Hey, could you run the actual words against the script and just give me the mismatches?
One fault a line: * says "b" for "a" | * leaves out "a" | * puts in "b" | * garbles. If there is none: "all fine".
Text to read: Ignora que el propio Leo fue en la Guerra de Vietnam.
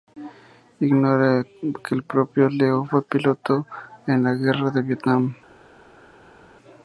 * puts in "piloto"